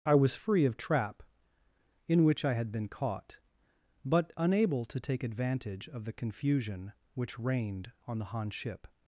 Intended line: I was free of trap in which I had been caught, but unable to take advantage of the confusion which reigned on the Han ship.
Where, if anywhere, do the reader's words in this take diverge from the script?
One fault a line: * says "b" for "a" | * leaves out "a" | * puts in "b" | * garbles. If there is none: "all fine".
all fine